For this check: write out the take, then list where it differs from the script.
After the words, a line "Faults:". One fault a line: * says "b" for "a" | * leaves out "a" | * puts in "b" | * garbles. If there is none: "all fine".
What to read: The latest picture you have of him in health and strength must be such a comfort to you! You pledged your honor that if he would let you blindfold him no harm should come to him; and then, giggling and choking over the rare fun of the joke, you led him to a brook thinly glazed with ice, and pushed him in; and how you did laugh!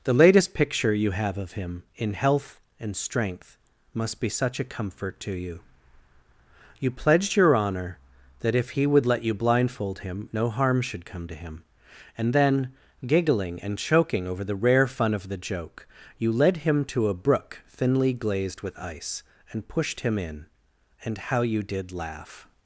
The latest picture you have of him in health and strength must be such a comfort to you! You pledged your honor that if he would let you blindfold him no harm should come to him; and then, giggling and choking over the rare fun of the joke, you led him to a brook thinly glazed with ice, and pushed him in; and how you did laugh!
Faults:
all fine